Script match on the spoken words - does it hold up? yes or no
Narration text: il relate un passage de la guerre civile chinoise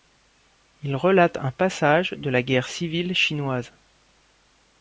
yes